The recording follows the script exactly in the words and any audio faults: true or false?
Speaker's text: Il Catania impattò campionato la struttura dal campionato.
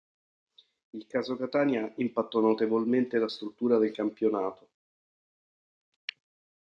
false